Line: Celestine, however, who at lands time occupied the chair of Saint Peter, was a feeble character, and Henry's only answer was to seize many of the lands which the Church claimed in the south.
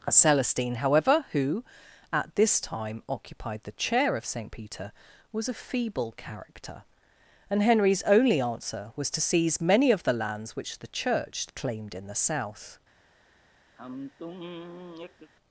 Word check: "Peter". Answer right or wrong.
right